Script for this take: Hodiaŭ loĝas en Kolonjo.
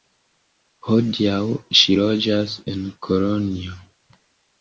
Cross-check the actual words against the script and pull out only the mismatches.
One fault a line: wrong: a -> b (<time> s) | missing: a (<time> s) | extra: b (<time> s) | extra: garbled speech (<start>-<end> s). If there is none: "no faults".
extra: ŝi (1.8 s)